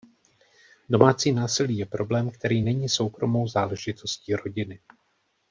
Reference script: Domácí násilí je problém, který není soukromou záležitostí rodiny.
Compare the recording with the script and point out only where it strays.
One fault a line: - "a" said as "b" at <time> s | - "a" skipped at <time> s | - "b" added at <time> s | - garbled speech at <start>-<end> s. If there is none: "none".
none